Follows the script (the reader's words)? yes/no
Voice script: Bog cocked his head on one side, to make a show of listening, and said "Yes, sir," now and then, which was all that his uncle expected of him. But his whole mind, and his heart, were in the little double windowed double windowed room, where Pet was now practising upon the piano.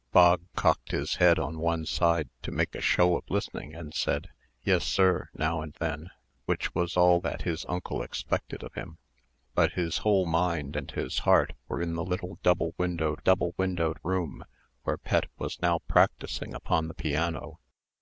yes